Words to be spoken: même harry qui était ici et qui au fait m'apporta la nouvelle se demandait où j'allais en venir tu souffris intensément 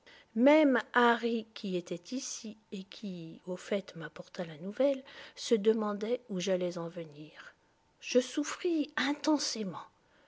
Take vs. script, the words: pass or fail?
fail